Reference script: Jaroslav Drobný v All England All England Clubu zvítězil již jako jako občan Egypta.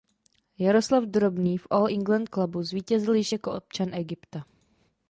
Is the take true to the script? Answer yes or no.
no